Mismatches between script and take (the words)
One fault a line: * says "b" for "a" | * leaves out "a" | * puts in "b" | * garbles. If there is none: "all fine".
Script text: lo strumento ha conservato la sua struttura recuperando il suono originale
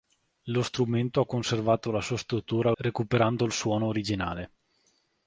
all fine